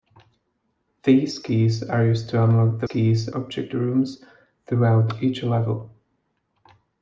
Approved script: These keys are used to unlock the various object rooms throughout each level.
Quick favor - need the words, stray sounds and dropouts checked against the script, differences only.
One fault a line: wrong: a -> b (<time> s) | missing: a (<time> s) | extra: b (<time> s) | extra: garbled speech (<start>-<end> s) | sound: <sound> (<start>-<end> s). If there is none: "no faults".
wrong: various -> keys (2.8 s)